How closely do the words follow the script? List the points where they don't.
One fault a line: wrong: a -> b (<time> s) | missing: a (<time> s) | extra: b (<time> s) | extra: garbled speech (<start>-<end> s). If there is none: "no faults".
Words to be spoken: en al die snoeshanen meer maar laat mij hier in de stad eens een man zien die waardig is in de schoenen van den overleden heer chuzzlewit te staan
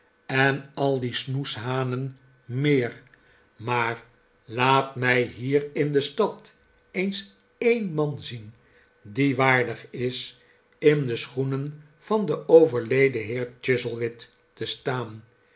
no faults